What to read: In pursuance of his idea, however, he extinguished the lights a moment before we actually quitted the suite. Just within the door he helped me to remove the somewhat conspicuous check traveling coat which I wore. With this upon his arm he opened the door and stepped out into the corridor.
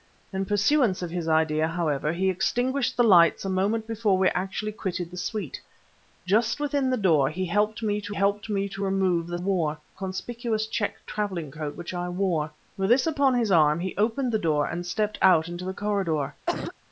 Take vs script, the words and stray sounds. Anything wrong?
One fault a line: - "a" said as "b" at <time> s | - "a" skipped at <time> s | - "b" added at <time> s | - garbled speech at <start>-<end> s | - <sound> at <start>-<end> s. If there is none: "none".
- "helped me to" added at 8.1 s
- "somewhat" said as "wore" at 9.3 s
- cough at 16.5-16.7 s